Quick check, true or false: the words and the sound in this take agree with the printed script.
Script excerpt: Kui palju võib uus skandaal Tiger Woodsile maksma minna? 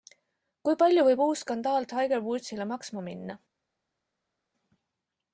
true